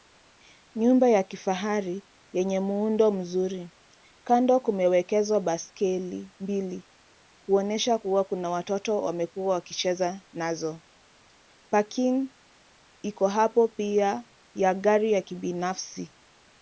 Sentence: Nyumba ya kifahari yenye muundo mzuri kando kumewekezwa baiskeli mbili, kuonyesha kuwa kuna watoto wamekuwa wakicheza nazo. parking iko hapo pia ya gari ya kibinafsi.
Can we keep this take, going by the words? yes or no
yes